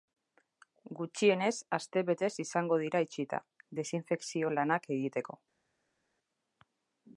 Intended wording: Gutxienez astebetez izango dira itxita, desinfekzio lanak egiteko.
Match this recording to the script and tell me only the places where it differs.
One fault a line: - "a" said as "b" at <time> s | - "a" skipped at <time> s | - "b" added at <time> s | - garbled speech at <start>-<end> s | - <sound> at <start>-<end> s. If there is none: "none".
none